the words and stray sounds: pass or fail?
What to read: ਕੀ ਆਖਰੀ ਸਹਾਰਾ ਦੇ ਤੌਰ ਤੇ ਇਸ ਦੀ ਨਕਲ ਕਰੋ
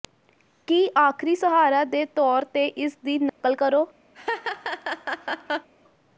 fail